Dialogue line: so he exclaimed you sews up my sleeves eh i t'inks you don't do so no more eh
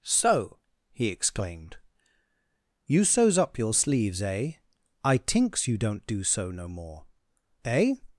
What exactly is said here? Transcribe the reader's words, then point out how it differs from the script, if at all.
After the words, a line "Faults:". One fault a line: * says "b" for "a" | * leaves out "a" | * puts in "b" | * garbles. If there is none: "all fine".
so he exclaimed you sews up your sleeves eh i t'inks you don't do so no more eh
Faults:
* says "your" for "my"